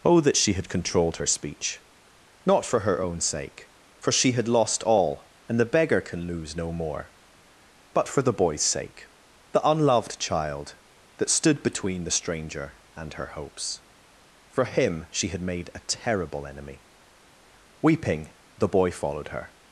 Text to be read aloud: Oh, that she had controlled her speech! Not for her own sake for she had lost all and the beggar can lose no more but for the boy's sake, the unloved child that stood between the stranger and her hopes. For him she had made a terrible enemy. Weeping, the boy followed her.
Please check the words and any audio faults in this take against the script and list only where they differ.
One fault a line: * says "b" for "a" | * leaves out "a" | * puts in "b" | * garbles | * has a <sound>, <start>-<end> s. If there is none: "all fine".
all fine